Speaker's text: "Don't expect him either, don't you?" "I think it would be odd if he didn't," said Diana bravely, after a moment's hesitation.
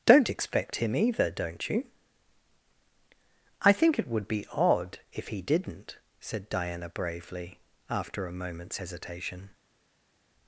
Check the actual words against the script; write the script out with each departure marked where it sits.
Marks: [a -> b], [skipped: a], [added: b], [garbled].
"Don't expect him either, don't you?" "I think it would be odd if he didn't," said Diana bravely, after a moment's hesitation.